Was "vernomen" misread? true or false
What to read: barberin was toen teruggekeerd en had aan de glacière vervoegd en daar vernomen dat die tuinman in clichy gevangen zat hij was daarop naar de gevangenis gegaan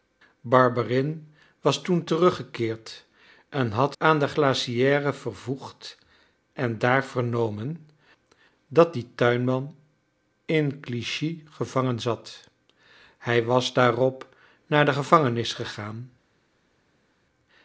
false